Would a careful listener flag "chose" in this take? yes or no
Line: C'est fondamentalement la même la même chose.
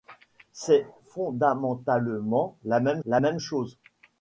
no